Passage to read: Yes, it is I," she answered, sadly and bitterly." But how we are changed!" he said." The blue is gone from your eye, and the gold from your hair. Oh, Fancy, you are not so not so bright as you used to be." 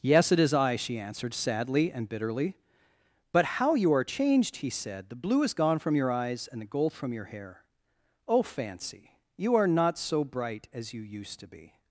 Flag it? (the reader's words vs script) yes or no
yes